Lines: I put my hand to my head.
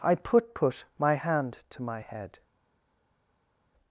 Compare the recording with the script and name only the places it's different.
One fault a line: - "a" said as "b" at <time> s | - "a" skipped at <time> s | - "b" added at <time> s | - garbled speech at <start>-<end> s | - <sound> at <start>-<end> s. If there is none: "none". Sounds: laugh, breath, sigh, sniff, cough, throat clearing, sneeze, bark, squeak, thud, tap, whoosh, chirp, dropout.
- "put" added at 0.6 s